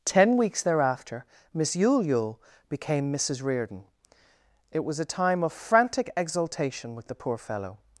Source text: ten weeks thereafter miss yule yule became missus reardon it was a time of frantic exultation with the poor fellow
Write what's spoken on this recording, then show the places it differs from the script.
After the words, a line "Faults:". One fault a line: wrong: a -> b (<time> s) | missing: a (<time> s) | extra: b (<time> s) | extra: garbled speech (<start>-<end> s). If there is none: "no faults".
ten weeks thereafter miss yule yule became missus reardon it was a time of frantic exultation with the poor fellow
Faults:
no faults